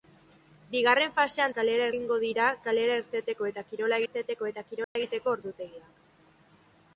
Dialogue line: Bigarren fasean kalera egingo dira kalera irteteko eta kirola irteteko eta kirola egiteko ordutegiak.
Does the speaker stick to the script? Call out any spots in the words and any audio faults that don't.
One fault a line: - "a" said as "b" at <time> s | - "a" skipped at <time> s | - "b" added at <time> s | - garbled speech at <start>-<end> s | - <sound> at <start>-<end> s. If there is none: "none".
- dropout at 4.8-5.0 s